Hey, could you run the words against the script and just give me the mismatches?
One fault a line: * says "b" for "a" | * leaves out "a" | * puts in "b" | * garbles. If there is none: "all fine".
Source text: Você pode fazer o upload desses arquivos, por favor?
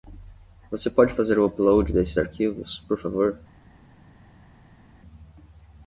all fine